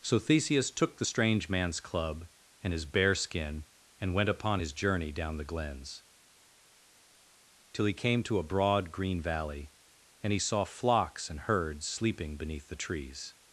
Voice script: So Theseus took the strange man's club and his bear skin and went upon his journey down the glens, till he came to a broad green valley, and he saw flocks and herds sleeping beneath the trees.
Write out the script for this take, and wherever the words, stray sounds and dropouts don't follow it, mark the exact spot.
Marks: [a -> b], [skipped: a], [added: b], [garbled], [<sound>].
So Theseus took the strange man's club and his bear skin and went upon his journey down the glens, till he came to a broad green valley, and he saw flocks and herds sleeping beneath the trees.